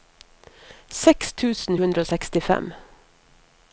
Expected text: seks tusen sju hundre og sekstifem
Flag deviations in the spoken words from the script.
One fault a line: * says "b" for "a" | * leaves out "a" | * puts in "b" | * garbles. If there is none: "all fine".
* leaves out "sju"